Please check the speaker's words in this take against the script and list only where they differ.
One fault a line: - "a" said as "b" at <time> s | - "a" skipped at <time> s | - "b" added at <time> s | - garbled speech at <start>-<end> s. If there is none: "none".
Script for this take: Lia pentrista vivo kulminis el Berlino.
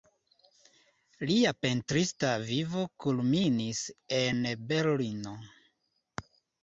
- "el" said as "en" at 4.2 s